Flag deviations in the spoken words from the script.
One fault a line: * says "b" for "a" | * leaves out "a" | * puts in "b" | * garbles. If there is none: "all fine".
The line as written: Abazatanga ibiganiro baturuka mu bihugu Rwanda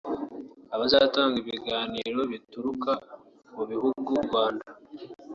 all fine